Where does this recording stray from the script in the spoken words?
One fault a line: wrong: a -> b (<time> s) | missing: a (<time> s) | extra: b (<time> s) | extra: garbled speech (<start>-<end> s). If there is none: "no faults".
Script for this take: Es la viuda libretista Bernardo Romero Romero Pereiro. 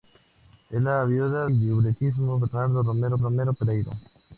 no faults